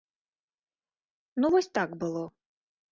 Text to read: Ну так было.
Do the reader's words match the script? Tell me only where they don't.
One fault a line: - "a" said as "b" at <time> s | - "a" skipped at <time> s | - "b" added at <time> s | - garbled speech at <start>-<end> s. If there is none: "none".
- "вось" added at 1.6 s